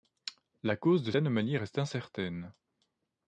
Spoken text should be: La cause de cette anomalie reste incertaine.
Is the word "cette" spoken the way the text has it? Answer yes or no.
no